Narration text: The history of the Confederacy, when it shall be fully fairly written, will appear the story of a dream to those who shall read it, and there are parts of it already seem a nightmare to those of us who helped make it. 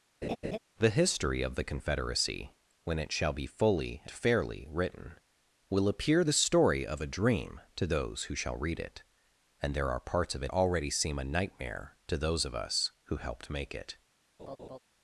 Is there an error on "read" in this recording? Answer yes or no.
no